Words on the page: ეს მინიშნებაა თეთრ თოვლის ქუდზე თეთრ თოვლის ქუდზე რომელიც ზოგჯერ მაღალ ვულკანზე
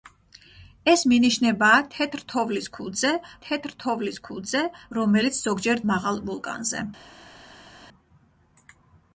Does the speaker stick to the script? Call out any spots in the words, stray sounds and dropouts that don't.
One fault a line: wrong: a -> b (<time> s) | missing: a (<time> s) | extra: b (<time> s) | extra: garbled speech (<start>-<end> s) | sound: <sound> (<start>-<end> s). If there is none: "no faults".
no faults